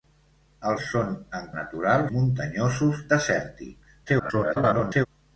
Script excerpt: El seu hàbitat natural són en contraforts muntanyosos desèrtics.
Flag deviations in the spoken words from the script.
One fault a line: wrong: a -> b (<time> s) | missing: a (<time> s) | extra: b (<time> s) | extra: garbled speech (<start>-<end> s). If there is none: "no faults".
missing: seu hàbitat natural (0.8 s)
wrong: contraforts -> natural (1.6 s)
extra: garbled speech (4.1-5.1 s)